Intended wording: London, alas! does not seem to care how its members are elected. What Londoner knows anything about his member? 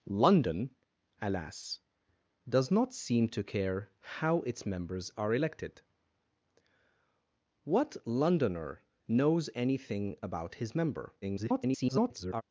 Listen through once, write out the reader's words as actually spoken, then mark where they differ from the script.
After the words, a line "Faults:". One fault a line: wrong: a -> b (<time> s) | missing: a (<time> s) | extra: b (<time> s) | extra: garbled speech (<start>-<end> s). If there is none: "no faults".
London, alas! does not seem to care how its members are elected. What Londoner knows anything about his member? [garbled]
Faults:
extra: garbled speech (11.2-12.4 s)